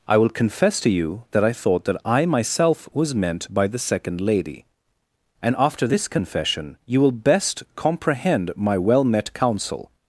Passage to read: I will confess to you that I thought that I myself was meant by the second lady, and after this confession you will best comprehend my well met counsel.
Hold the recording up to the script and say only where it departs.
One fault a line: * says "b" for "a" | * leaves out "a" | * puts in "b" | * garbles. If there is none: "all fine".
all fine